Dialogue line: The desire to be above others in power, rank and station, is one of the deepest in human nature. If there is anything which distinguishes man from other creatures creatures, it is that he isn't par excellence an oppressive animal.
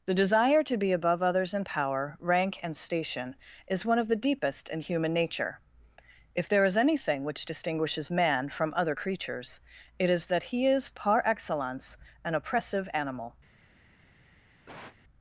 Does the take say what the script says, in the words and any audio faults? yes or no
no